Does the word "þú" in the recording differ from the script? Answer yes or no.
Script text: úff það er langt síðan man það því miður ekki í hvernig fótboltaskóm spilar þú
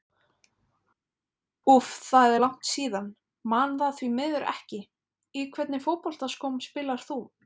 no